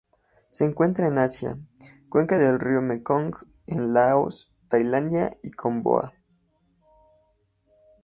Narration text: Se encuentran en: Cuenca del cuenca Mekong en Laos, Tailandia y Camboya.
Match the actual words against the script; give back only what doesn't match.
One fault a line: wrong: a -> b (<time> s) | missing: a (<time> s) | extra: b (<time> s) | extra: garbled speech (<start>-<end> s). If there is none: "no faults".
extra: Asia (1.2 s)
wrong: cuenca -> río (2.6 s)